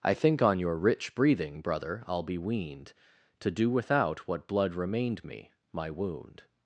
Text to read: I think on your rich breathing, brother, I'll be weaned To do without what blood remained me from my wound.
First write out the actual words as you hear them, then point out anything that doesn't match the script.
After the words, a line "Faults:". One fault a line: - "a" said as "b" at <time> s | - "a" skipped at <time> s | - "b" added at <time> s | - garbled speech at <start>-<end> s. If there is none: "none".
I think on your rich breathing, brother, I'll be weaned To do without what blood remained me my wound.
Faults:
- "from" skipped at 5.5 s